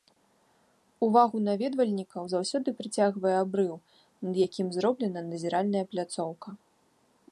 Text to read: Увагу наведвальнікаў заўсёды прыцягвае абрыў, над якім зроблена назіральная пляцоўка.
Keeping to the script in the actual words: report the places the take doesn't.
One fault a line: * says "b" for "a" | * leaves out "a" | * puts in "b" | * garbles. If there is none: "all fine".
all fine